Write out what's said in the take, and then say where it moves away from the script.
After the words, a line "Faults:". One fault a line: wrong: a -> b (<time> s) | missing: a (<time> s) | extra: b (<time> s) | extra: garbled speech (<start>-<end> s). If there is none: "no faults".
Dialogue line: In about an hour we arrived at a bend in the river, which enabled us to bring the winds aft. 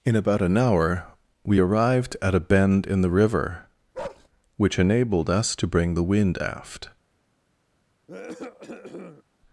In about an hour we arrived at a bend in the river, which enabled us to bring the wind aft.
Faults:
wrong: winds -> wind (6.0 s)